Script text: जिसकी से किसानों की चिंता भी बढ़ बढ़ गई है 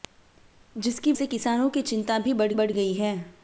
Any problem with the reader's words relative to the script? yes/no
no